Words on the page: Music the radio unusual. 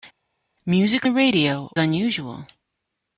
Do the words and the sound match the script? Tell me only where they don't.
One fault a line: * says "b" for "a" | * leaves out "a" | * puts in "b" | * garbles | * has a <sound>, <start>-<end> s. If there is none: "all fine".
all fine